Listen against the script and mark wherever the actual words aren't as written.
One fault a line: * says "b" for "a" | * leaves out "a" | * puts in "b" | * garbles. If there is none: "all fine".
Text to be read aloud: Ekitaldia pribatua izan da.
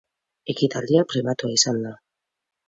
all fine